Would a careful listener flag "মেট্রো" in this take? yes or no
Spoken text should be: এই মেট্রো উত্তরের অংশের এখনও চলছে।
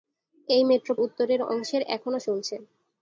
no